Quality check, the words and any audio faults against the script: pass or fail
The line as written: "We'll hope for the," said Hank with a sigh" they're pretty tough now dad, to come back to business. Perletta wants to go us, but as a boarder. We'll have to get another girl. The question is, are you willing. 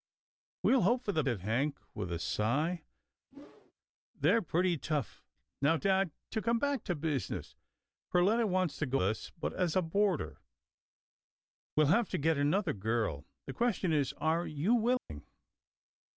fail